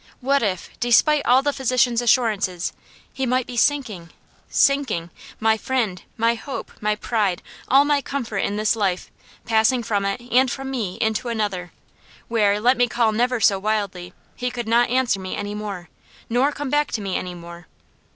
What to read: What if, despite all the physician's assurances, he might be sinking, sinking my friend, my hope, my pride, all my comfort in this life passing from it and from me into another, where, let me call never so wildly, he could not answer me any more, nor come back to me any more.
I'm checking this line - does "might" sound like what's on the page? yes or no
yes